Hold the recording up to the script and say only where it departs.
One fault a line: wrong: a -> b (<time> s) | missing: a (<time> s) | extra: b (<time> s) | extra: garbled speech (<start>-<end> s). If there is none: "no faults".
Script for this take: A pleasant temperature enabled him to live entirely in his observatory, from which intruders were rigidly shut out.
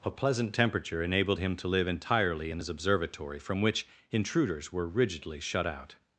no faults